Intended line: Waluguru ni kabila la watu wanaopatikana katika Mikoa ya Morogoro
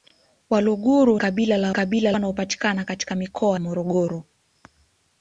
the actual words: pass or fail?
fail